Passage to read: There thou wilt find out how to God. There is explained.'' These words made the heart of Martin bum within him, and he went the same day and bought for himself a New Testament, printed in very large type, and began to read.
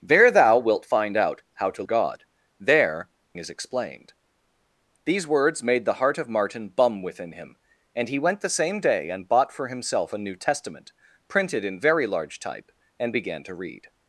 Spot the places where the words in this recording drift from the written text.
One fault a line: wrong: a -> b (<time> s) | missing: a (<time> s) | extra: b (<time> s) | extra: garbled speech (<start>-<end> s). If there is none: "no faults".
no faults